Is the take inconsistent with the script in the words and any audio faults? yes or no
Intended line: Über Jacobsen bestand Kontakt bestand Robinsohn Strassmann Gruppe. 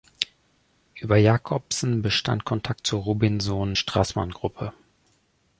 yes